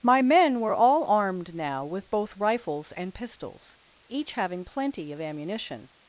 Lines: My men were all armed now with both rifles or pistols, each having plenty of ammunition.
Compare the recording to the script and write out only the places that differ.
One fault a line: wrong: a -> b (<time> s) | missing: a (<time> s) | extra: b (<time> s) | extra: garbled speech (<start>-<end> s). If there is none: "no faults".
wrong: or -> and (2.9 s)